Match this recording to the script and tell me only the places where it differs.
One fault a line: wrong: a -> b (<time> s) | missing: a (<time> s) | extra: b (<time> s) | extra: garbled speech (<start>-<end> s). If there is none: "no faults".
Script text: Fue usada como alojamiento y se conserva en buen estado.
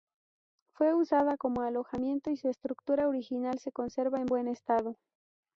extra: su estructura original (2.4 s)